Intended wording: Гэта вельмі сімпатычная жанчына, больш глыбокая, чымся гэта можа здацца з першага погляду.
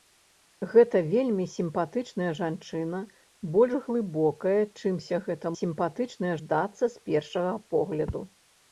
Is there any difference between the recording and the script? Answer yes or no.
yes